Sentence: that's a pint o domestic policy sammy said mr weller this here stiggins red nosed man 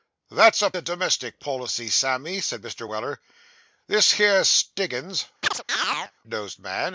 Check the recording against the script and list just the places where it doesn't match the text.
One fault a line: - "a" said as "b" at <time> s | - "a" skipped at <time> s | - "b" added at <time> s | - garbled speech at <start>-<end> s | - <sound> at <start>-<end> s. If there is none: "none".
- "pint" skipped at 0.7 s
- "red" skipped at 5.3 s
- chirp at 5.4-6.1 s